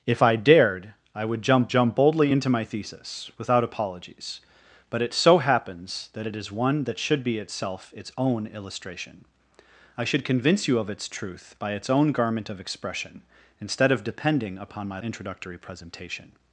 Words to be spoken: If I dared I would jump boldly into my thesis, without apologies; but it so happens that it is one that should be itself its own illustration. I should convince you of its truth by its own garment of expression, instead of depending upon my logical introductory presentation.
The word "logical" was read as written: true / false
false